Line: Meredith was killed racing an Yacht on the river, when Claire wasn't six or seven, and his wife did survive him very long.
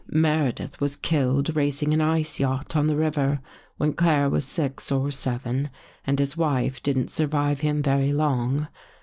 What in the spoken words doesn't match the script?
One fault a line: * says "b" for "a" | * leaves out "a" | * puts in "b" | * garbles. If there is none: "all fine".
* puts in "Ice"
* says "was" for "wasn't"
* says "didn't" for "did"